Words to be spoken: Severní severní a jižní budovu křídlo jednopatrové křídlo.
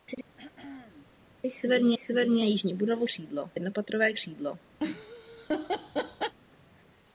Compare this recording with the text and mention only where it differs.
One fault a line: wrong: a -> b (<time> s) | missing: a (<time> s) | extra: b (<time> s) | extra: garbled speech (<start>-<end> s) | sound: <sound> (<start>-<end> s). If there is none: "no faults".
sound: throat clearing (0.4-1.1 s)
sound: laugh (4.8-6.4 s)